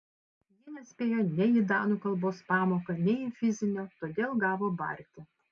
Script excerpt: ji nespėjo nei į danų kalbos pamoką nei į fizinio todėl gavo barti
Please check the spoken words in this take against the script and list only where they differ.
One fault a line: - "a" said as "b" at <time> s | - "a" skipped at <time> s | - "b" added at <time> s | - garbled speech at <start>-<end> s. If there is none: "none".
none